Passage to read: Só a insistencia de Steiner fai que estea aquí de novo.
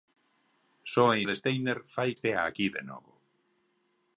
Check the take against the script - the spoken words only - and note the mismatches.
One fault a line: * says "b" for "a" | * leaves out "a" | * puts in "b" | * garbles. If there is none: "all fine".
* leaves out "insistencia"
* leaves out "que"